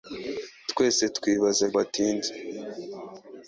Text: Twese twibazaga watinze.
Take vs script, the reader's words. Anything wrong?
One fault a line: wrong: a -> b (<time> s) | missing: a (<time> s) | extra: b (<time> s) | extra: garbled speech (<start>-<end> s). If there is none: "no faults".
no faults